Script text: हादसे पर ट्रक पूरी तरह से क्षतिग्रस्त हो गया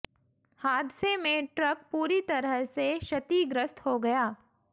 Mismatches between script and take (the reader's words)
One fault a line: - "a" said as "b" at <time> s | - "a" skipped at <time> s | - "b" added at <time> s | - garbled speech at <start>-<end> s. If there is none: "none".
- "पर" said as "में" at 1.2 s